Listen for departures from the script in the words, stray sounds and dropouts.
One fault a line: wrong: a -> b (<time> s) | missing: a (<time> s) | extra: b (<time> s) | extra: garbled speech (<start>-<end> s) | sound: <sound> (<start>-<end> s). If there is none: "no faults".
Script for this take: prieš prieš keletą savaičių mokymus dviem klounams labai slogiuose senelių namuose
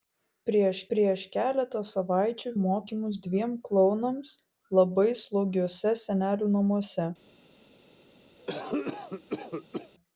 sound: cough (8.4-9.9 s)